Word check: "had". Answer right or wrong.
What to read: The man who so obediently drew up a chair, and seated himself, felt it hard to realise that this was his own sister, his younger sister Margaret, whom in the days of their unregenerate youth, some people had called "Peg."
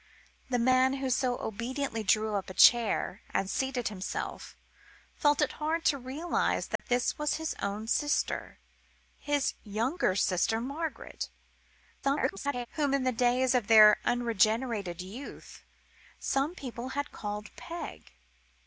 right